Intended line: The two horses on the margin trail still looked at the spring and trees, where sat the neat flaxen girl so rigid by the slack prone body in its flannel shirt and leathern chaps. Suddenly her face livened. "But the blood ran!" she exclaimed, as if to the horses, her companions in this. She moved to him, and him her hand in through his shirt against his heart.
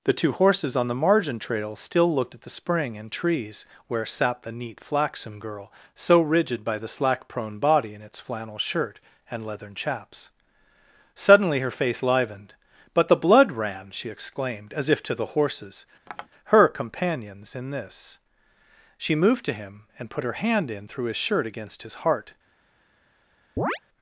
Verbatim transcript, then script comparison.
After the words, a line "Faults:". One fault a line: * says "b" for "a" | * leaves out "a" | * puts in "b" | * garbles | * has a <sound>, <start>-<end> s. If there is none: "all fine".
The two horses on the margin trail still looked at the spring and trees, where sat the neat flaxen girl so rigid by the slack prone body in its flannel shirt and leathern chaps. Suddenly her face livened. "But the blood ran!" she exclaimed, as if to the horses, her companions in this. She moved to him, and put her hand in through his shirt against his heart.
Faults:
* has a tap, 16.1-16.3 s
* says "put" for "him"
* has a chirp, 23.6-23.8 s